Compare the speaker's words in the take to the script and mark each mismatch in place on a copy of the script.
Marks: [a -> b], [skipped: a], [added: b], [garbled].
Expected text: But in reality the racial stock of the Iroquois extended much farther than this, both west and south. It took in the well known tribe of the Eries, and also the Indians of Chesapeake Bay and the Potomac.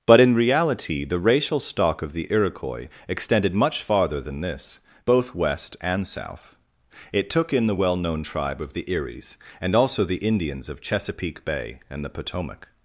But in reality the racial stock of the Iroquois extended much farther than this, both west and south. It took in the well known tribe of the Eries, and also the Indians of Chesapeake Bay and the Potomac.